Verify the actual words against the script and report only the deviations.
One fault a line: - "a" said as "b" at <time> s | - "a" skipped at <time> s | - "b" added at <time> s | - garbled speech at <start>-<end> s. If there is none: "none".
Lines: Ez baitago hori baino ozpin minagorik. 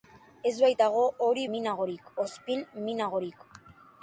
- "baino" said as "minagorik" at 1.5 s